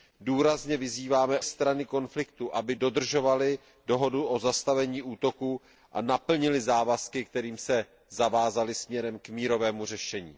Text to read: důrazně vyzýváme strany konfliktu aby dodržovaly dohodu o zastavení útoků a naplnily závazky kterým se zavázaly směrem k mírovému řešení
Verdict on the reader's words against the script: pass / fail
pass